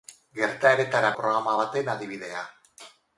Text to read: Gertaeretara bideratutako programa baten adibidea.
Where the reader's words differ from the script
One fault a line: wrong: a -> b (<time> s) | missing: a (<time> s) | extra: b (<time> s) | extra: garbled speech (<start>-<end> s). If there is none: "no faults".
missing: bideratutako (1.1 s)